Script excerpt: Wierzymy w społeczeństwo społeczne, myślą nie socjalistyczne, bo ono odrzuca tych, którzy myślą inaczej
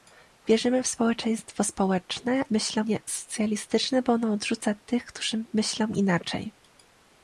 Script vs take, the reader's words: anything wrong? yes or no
no